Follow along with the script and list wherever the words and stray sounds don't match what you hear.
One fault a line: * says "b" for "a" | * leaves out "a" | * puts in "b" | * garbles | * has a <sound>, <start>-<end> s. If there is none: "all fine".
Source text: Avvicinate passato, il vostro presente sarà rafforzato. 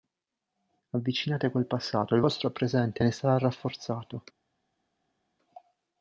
* puts in "quel"
* puts in "ne"